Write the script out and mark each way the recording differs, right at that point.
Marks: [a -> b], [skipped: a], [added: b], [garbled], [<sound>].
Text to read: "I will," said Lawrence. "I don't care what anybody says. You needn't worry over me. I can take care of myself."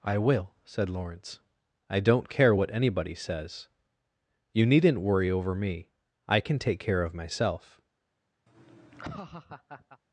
"I will," said Lawrence. "I don't care what anybody says. You needn't worry over me. I can take care of myself." [laugh]